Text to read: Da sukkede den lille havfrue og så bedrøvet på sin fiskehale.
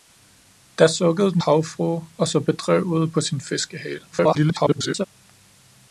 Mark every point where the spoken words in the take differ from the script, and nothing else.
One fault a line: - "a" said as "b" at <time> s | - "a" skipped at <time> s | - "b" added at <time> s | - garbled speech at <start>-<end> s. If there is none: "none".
- "lille" skipped at 1.4 s
- garbled speech at 4.1-5.1 s